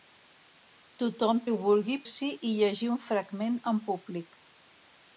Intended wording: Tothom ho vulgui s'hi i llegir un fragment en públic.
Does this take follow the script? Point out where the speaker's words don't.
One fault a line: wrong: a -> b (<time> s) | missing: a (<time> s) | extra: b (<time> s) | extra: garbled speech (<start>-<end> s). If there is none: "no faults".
no faults